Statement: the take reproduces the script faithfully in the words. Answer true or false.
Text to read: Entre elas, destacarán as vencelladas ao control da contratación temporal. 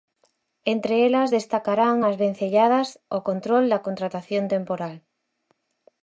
true